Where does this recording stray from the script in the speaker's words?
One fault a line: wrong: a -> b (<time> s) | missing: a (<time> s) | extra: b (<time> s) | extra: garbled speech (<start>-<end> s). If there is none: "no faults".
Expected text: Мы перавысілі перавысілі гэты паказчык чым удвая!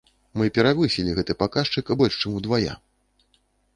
missing: перавысілі (1.1 s)
extra: больш (2.0 s)